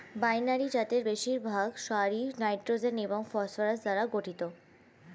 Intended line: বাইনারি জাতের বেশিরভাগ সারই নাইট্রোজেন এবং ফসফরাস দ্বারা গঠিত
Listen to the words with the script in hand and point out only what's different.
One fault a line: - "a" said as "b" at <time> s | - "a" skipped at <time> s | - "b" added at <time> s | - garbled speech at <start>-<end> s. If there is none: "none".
none